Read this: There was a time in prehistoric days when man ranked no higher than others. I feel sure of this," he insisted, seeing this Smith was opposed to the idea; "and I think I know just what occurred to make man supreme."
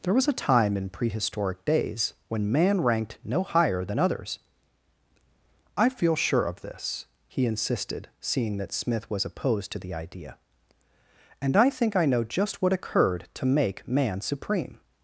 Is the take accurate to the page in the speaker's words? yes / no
no